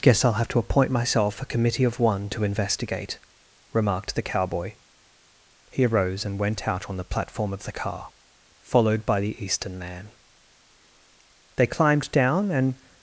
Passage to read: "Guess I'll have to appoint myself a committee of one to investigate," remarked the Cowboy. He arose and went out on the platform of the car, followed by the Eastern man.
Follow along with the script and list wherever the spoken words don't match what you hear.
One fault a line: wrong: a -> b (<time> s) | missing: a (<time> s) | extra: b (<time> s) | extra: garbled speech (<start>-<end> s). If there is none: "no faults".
extra: They climbed down and (11.6 s)